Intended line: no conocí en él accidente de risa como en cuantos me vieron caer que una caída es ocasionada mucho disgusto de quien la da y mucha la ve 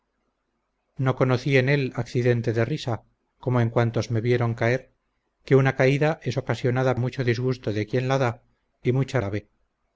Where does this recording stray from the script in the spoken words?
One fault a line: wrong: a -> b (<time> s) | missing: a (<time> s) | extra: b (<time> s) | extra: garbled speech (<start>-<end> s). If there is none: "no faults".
no faults